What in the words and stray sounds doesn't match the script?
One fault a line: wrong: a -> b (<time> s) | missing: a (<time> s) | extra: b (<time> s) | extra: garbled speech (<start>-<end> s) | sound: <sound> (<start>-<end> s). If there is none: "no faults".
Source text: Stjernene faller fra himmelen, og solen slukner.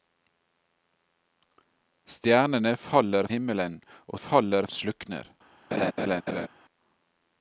missing: fra (3.3 s)
wrong: solen -> faller (4.2 s)
sound: laugh (5.7-6.5 s)